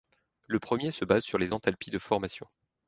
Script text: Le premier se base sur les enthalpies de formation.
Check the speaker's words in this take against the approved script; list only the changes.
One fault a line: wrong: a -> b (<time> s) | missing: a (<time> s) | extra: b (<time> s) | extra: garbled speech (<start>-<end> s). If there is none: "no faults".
no faults